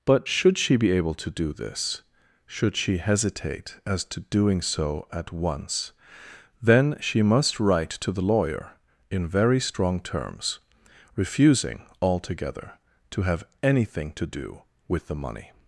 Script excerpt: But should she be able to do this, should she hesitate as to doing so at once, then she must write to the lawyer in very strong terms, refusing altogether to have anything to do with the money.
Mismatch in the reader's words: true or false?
false